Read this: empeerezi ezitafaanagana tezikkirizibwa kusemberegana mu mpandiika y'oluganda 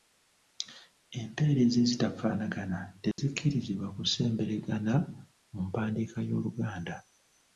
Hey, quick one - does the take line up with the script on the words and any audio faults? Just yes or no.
no